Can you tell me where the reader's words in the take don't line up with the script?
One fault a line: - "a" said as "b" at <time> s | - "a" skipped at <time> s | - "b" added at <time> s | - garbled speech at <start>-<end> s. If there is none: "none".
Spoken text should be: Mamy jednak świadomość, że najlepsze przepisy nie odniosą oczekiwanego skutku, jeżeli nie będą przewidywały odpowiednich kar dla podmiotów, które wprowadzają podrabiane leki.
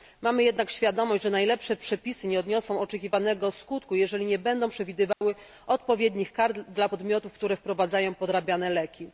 none